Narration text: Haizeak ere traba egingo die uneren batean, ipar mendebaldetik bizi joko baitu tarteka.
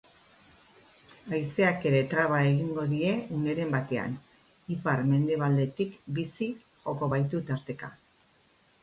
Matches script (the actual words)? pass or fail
pass